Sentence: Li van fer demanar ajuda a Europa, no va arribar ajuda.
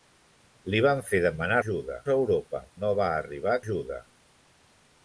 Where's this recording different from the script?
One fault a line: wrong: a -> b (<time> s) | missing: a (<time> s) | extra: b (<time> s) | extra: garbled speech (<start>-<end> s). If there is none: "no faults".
no faults